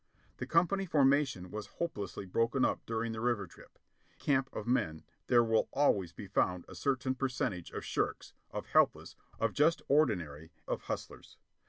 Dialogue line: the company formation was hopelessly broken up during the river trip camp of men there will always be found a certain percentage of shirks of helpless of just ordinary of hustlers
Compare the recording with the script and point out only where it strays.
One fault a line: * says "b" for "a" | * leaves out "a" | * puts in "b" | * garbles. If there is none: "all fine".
all fine